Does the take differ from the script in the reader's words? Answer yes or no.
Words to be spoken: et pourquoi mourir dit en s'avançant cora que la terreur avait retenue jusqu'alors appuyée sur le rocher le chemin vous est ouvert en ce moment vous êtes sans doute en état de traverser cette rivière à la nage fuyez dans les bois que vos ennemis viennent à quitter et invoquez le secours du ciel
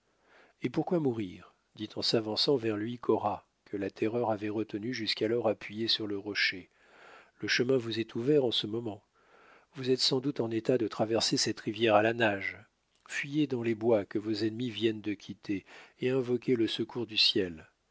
yes